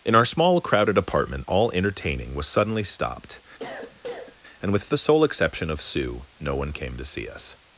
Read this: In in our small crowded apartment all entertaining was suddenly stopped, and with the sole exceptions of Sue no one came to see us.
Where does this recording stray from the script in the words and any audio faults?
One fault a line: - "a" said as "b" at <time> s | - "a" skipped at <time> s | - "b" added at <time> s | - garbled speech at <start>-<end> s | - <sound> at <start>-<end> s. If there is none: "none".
- "in" skipped at 0.1 s
- cough at 3.6-4.4 s
- "exceptions" said as "exception" at 5.2 s